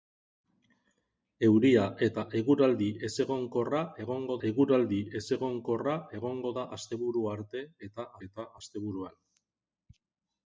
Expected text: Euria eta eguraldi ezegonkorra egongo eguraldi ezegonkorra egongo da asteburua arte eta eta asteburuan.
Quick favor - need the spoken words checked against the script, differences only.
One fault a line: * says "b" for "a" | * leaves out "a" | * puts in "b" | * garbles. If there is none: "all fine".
all fine